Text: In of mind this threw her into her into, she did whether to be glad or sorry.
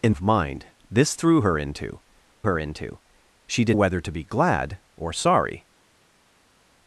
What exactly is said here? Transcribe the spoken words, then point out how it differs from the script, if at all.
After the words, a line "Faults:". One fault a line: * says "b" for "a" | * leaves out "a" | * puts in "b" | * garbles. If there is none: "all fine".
In of mind this threw her into her into, she did whether to be glad or sorry.
Faults:
all fine